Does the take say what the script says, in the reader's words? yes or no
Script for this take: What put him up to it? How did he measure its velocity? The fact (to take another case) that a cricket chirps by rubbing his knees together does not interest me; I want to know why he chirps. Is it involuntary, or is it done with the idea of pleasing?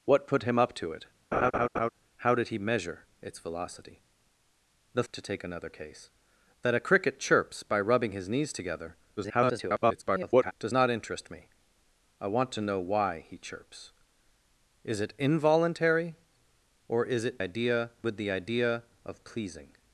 no